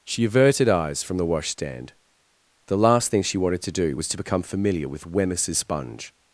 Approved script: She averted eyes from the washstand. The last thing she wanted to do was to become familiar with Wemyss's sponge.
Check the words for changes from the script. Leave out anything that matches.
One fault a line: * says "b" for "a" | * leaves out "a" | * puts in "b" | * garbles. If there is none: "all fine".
all fine